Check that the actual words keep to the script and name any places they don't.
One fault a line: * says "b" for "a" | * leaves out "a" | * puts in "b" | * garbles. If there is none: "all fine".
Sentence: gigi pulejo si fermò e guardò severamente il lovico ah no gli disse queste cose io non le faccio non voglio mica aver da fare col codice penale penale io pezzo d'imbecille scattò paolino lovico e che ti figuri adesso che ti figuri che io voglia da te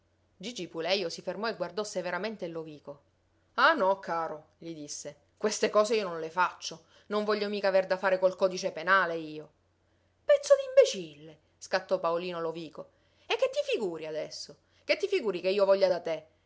* puts in "caro"
* leaves out "penale"